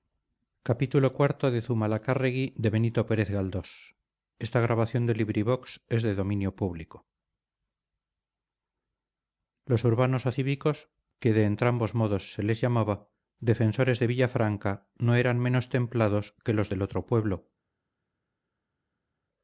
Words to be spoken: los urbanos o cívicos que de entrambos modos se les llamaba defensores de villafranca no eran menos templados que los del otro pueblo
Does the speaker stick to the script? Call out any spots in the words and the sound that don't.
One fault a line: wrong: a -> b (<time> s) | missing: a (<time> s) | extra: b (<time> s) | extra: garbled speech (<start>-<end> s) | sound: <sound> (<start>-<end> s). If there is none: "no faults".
no faults